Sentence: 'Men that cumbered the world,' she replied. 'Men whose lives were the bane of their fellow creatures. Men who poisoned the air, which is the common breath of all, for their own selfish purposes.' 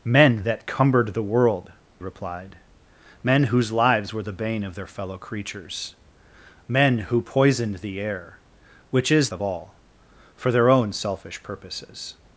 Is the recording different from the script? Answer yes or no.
yes